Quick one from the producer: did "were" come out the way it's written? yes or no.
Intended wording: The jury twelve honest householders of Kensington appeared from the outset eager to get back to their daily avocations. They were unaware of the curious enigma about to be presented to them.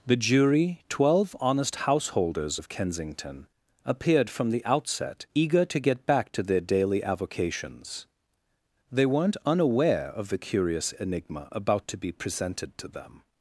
no